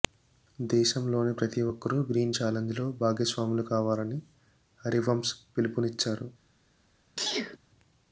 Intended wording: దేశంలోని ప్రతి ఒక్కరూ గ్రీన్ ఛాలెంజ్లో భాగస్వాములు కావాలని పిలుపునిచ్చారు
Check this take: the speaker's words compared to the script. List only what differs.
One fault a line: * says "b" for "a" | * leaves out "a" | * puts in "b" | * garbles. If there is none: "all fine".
* puts in "హరివంశ్"